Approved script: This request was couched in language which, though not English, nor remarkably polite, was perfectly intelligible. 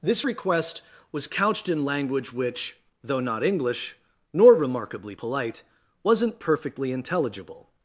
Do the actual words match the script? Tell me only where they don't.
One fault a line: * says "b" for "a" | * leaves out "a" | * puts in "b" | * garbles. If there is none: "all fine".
* says "wasn't" for "was"